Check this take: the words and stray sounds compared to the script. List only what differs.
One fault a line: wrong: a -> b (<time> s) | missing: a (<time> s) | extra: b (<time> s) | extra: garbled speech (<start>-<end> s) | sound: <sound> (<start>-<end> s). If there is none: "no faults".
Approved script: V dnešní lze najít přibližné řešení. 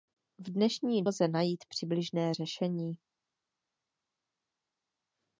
no faults